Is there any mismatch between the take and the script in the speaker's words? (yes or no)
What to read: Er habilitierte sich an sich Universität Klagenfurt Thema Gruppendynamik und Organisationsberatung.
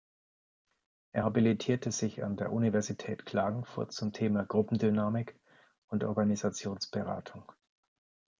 yes